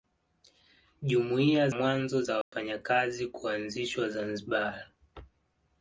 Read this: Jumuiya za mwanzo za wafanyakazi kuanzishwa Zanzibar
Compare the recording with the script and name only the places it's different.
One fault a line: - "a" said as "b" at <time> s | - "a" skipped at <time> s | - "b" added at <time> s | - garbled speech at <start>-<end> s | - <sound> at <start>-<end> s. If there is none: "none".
- "za" skipped at 1.7 s
- dropout at 2.4-2.5 s